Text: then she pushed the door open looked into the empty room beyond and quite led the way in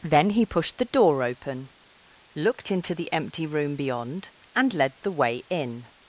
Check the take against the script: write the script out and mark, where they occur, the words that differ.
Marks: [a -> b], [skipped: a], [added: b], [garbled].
then [she -> he] pushed the door open looked into the empty room beyond and [skipped: quite] led the way in